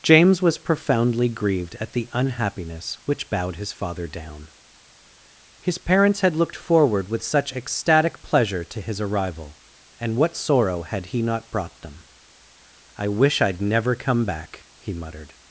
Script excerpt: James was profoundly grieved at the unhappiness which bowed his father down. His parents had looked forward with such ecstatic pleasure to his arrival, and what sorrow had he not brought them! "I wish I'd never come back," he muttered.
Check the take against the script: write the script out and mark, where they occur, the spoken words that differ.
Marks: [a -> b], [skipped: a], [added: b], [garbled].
James was profoundly grieved at the unhappiness which bowed his father down. His parents had looked forward with such ecstatic pleasure to his arrival, and what sorrow had he not brought them! "I wish I'd never come back," he muttered.